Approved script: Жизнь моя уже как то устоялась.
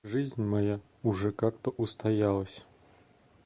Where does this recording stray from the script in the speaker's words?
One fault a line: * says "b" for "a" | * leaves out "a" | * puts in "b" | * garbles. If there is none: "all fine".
all fine